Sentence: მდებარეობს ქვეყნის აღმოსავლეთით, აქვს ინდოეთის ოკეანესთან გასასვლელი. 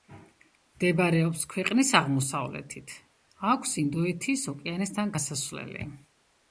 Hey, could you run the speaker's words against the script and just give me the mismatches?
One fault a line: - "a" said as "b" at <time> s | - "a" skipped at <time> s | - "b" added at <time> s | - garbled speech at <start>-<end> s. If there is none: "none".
none